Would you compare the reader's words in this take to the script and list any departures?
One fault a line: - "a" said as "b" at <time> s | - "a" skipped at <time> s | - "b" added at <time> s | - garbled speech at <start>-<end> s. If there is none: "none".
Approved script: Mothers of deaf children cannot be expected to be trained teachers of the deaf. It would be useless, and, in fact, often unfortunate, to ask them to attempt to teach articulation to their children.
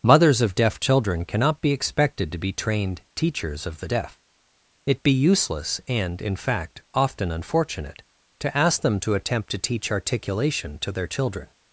- "would" skipped at 5.0 s